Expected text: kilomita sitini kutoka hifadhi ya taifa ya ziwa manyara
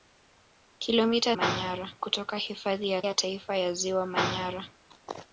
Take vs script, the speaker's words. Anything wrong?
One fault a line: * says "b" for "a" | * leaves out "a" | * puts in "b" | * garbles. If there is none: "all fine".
* says "manyara" for "sitini"
* puts in "ya"